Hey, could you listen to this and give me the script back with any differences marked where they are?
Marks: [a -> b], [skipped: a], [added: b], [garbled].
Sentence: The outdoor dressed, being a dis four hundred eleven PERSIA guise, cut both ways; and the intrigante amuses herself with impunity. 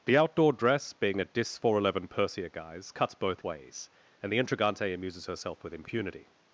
The outdoor [dressed, -> dress] being a dis four hundred eleven PERSIA guise, [cut -> cuts] both ways; and the intrigante amuses herself with impunity.